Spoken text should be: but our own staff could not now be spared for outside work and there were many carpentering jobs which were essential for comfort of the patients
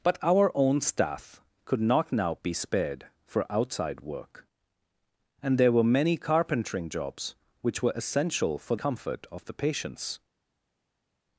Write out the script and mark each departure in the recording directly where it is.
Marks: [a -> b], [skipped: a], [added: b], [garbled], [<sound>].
but our own staff could not now be spared for outside work and there were many carpentering jobs which were essential for comfort of the patients